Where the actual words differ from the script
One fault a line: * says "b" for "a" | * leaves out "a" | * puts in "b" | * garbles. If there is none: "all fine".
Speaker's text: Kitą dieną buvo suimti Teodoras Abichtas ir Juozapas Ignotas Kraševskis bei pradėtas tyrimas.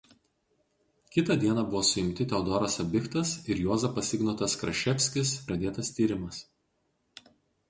* leaves out "bei"